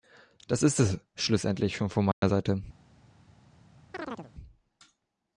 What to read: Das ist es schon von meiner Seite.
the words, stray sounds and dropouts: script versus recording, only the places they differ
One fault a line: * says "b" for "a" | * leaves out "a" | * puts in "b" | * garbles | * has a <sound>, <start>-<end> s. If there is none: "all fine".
* puts in "schlussendlich"
* has a dropout, 2.1-2.2 s
* has a chirp, 3.9-4.3 s